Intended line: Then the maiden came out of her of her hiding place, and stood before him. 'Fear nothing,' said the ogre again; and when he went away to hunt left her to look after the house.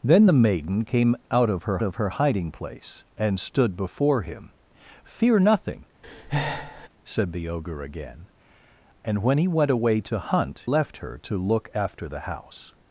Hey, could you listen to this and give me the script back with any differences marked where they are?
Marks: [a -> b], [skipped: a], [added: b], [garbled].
Then the maiden came out of her of her hiding place, and stood before him. 'Fear nothing,' said the ogre again; and when he went away to hunt left her to look after the house.